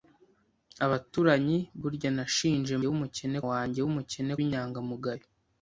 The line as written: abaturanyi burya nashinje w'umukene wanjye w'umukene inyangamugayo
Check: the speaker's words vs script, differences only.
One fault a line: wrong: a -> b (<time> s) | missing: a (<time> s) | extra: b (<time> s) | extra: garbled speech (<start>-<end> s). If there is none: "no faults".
no faults